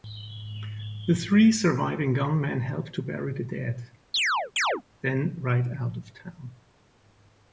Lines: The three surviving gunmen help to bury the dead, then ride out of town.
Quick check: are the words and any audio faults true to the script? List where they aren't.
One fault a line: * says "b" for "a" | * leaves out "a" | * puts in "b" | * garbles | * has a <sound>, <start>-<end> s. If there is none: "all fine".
* has a chirp, 4.1-4.8 s